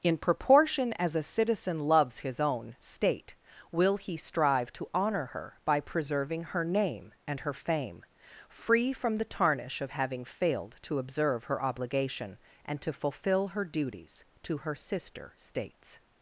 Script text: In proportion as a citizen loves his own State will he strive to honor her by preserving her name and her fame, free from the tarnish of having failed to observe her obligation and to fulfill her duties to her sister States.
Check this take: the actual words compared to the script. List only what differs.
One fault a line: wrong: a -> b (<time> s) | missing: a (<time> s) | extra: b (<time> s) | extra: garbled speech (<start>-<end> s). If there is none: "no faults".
no faults